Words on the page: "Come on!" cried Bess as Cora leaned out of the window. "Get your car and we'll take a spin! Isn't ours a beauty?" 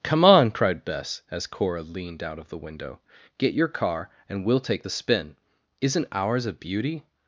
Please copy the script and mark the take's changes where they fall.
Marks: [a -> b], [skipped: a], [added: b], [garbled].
"Come on!" cried Bess as Cora leaned out of the window. "Get your car and we'll take [a -> the] spin! Isn't ours a beauty?"